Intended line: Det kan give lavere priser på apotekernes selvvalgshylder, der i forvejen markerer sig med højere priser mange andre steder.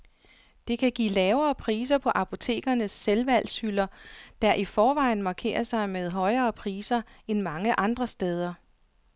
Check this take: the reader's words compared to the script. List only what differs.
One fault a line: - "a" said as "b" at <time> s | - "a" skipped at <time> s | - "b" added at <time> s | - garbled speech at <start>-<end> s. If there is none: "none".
- "end" added at 7.3 s